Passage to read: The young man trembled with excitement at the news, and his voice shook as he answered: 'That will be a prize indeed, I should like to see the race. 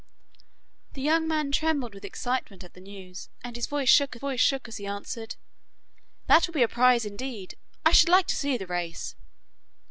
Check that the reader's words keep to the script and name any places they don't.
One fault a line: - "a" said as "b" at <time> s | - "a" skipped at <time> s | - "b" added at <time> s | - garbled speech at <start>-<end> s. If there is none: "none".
- "voice shook" added at 4.2 s